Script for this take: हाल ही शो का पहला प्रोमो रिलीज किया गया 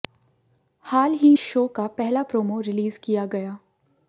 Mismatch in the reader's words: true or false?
false